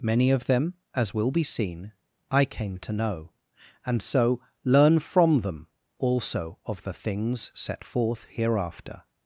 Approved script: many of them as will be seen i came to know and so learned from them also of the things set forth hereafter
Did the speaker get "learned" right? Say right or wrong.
wrong